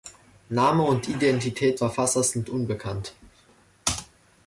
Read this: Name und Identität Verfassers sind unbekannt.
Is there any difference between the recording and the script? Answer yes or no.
no